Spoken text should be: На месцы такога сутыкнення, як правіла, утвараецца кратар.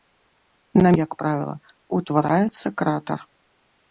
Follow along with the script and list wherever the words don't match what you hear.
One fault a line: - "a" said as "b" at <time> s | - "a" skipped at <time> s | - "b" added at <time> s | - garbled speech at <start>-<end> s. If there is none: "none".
- "месцы такога сутыкнення" skipped at 0.9 s